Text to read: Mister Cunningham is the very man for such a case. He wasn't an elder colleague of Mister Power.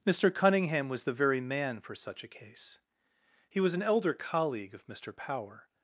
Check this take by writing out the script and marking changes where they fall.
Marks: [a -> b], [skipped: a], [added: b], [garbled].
Mister Cunningham [is -> was] the very man for such a case. He [wasn't -> was] an elder colleague of Mister Power.